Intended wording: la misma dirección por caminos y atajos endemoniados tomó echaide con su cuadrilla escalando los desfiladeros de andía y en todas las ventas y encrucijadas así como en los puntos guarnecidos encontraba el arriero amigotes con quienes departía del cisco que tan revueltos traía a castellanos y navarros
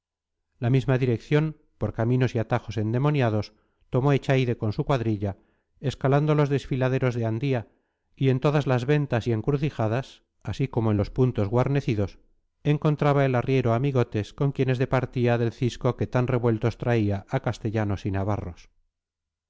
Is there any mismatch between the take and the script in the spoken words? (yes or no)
no